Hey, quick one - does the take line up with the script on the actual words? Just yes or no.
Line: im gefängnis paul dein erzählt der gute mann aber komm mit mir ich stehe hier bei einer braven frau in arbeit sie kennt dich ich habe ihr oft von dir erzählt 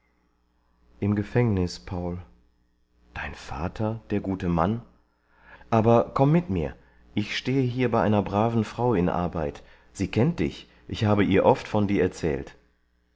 no